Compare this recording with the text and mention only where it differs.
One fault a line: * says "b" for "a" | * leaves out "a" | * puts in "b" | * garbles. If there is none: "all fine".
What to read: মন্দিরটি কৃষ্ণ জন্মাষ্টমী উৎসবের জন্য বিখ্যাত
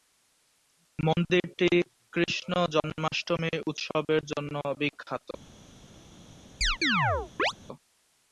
all fine